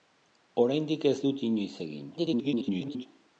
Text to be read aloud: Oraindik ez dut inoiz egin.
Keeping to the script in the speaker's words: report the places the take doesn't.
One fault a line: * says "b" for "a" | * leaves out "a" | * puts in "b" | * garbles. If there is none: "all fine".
* garbles